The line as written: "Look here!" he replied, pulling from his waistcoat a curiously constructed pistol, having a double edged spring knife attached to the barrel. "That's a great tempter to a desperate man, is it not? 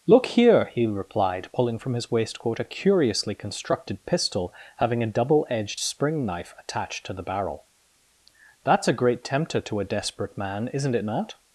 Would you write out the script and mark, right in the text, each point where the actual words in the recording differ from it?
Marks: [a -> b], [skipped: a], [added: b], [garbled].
"Look here!" he replied, pulling from his waistcoat a curiously constructed pistol, having a double edged spring knife attached to the barrel. "That's a great tempter to a desperate man, [is -> isn't] it not?